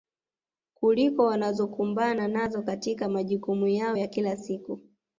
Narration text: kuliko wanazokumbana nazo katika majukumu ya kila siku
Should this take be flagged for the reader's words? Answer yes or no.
yes